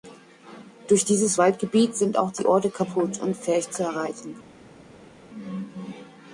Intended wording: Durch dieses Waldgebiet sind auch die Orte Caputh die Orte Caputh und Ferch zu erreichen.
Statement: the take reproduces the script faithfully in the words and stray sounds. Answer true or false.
false